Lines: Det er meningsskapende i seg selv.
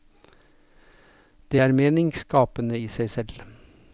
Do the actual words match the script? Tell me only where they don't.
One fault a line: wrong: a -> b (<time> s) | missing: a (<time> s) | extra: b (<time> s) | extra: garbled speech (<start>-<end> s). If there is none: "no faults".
no faults